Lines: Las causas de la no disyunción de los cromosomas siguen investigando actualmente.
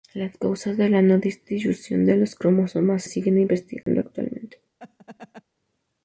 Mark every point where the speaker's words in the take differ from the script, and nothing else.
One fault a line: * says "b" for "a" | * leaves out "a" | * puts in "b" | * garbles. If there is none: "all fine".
all fine